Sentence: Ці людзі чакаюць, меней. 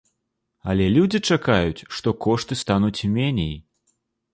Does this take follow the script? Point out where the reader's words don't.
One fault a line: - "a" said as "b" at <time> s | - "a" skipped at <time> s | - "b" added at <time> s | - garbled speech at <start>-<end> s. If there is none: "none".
- "Ці" said as "Але" at 0.7 s
- "што кошты стануць" added at 2.0 s